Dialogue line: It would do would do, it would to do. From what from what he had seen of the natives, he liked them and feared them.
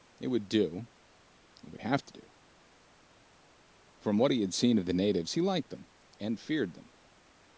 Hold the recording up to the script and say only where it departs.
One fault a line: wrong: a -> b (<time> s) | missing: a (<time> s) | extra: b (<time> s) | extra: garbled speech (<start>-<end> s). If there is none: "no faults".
missing: would do (0.9 s)
extra: have (1.8 s)
missing: from what (4.3 s)